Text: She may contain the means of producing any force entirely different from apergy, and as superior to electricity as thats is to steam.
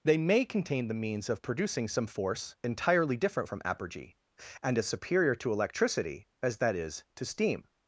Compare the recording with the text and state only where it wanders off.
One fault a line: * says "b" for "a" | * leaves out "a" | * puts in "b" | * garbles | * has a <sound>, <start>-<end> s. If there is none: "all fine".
* says "They" for "She"
* says "some" for "any"
* says "that" for "thats"